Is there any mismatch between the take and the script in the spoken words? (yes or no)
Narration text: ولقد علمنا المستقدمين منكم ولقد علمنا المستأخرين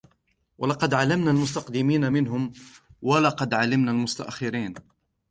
no